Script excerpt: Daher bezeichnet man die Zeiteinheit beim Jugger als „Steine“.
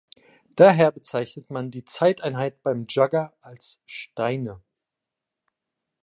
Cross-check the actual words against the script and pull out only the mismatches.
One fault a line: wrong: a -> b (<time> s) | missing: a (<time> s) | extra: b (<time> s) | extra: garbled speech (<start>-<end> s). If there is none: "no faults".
no faults